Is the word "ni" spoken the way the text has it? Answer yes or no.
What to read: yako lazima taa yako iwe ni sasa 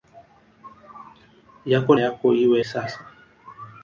no